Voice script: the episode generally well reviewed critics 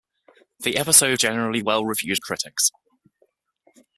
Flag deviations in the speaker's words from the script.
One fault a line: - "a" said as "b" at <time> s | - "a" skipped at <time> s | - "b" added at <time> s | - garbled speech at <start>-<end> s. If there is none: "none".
none